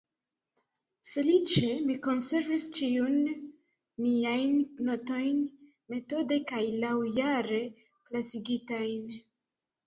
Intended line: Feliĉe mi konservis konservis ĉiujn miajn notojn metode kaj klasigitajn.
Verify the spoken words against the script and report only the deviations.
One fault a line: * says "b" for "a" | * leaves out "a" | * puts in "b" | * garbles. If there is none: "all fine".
* leaves out "konservis"
* puts in "laŭjare"